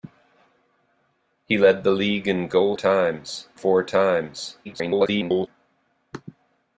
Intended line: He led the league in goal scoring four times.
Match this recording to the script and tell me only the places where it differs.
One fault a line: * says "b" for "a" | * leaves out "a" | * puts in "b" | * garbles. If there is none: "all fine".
* says "times" for "scoring"
* garbles